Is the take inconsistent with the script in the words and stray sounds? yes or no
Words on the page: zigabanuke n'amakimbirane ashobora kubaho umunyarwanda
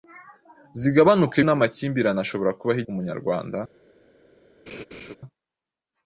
yes